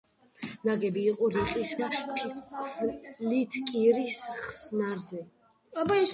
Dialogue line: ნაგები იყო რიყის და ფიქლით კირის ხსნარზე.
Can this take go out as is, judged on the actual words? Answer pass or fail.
pass